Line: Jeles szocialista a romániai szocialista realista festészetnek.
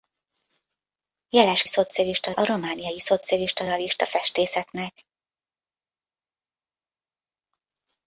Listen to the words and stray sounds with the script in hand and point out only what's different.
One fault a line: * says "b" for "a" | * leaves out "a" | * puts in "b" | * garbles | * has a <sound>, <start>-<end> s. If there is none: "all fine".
all fine